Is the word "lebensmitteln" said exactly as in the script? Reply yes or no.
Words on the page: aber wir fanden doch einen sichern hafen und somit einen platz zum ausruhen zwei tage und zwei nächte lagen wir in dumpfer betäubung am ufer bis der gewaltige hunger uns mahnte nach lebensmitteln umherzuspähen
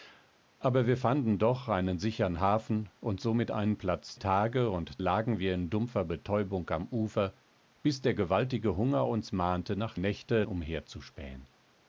no